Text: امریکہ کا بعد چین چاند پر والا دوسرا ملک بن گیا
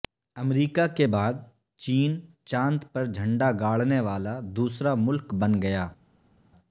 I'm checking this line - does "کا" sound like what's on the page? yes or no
no